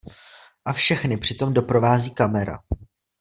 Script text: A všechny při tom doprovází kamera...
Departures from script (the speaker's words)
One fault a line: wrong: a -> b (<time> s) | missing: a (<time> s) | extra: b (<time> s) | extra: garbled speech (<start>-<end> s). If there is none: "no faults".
no faults